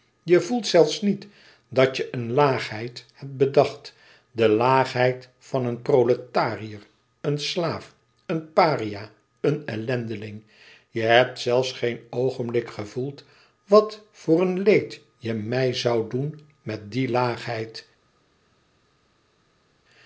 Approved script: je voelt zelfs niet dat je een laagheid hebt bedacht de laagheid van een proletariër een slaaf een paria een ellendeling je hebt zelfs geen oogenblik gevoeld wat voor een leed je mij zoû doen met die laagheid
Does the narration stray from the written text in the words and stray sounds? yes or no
no